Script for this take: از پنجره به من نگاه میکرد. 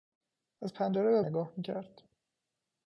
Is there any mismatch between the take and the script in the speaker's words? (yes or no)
yes